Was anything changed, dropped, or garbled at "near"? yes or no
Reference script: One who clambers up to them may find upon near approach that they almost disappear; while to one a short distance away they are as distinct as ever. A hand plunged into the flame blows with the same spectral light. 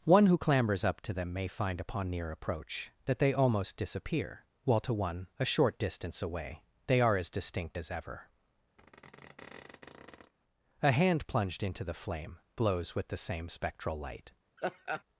no